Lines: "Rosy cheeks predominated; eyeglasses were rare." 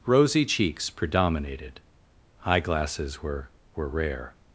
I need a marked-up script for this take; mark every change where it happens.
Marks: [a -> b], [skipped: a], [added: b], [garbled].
"Rosy cheeks predominated; eyeglasses were [added: were] rare."